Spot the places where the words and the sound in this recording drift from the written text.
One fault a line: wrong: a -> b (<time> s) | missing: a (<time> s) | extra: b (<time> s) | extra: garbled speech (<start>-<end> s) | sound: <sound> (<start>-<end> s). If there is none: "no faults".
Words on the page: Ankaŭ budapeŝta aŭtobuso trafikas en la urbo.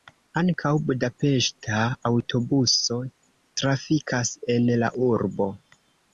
no faults